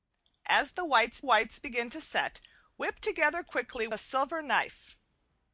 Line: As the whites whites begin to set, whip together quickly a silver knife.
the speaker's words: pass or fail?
pass